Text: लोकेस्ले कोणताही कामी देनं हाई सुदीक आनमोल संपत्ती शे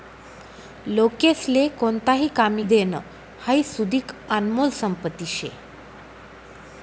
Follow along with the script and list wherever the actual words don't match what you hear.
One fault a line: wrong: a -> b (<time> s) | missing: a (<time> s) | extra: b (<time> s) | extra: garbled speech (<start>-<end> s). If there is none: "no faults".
no faults